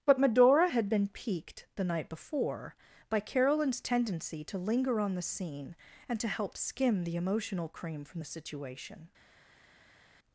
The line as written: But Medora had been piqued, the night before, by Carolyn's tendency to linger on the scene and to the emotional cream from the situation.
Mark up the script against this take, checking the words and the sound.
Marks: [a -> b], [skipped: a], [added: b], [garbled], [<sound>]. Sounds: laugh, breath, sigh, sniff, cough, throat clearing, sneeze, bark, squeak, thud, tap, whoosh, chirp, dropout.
But Medora had been piqued, the night before, by Carolyn's tendency to linger on the scene and to [added: help skim] the emotional cream from the situation.